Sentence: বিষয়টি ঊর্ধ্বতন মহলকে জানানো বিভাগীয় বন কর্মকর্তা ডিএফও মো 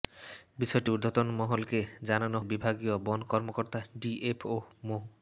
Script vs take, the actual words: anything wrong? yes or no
no